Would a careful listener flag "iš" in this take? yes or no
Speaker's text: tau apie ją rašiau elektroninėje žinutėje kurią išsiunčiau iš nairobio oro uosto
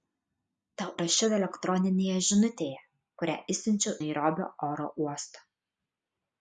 yes